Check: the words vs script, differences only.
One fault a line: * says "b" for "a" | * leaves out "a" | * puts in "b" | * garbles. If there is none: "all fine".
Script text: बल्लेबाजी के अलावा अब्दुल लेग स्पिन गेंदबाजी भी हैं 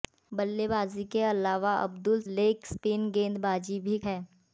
all fine